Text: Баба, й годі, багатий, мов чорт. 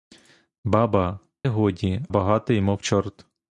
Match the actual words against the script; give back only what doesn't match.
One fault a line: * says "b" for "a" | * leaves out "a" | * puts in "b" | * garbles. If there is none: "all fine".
all fine